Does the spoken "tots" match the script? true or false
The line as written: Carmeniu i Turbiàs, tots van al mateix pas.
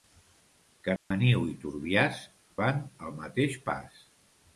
false